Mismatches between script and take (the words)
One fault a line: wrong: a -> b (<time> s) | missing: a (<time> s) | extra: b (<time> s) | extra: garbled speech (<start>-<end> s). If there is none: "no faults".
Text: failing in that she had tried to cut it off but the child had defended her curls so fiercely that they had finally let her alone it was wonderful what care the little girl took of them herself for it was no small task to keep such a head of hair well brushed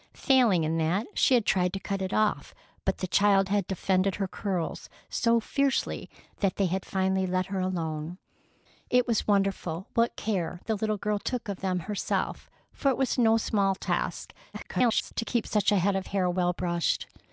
extra: garbled speech (14.5-15.1 s)